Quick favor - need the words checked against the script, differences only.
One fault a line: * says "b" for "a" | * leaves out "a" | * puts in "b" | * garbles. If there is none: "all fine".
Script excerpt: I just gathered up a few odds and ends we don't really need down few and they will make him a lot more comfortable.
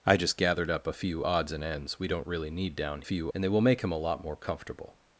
all fine